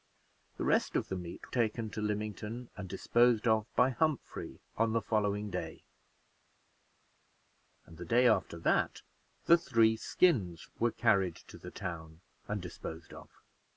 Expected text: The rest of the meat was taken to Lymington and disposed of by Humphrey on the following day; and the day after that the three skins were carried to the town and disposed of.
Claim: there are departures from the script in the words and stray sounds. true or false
true